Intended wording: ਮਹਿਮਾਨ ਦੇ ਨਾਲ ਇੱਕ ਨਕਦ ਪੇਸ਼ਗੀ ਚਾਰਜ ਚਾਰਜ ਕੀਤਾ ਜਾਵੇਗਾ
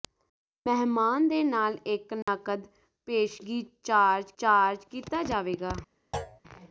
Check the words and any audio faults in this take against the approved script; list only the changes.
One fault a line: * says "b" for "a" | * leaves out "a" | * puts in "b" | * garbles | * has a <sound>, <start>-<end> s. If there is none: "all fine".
* has a dropout, 2.2-2.3 s
* has a thud, 6.1-6.4 s